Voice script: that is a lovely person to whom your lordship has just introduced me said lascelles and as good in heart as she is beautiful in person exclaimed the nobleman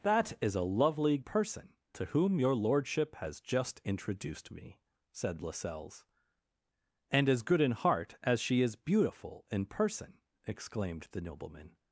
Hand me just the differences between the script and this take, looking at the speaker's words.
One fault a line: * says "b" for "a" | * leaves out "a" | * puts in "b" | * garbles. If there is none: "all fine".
all fine